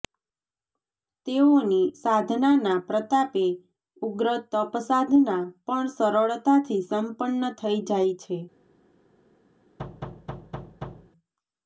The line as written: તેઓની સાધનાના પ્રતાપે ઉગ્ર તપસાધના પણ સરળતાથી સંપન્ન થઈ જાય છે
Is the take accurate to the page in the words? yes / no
yes